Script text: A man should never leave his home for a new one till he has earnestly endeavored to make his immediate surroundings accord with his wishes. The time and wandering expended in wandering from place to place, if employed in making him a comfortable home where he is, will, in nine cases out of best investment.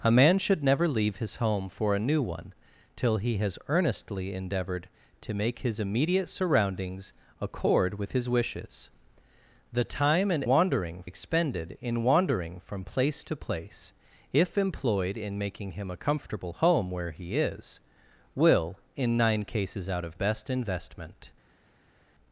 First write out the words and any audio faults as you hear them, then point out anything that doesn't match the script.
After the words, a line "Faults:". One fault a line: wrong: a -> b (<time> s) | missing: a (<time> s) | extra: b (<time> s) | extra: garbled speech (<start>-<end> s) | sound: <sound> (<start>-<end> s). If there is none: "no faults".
A man should never leave his home for a new one till he has earnestly endeavored to make his immediate surroundings accord with his wishes. The time and wandering expended in wandering from place to place, if employed in making him a comfortable home where he is, will, in nine cases out of best investment.
Faults:
no faults